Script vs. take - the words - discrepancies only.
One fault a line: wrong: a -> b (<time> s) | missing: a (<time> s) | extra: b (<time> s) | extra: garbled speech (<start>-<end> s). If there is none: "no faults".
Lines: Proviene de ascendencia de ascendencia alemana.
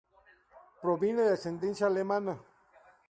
missing: de ascendencia (1.9 s)